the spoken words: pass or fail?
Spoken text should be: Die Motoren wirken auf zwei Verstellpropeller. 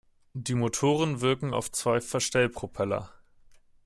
pass